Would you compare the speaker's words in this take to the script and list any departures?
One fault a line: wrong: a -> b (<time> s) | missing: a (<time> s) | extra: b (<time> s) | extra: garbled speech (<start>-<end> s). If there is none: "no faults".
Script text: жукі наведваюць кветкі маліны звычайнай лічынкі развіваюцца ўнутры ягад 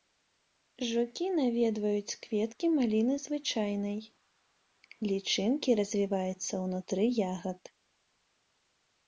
no faults